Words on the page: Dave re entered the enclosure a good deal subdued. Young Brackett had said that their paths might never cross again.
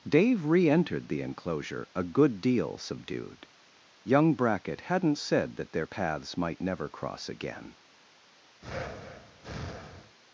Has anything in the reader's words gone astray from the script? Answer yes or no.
yes